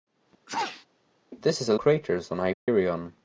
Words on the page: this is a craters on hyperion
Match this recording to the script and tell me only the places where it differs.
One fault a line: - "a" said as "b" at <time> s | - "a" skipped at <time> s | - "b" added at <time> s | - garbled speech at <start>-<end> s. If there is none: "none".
none